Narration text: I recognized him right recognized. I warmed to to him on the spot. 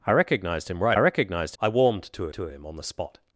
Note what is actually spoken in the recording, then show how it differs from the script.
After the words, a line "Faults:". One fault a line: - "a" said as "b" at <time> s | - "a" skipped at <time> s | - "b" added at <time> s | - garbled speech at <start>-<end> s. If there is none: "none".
I recognized him right recognized. I warmed to to him on the spot.
Faults:
none